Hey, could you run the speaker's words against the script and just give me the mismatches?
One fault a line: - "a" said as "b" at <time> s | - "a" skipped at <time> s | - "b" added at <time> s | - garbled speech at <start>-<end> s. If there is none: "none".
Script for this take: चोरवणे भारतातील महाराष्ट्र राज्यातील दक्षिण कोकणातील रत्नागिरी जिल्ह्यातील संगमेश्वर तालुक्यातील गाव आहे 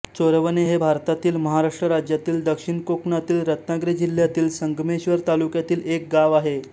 - "हे" added at 0.6 s
- "एक" added at 5.9 s